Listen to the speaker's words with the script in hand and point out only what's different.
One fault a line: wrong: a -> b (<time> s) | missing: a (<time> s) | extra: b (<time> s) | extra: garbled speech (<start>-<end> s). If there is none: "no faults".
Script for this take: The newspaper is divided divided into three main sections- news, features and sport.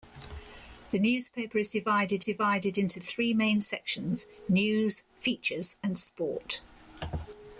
no faults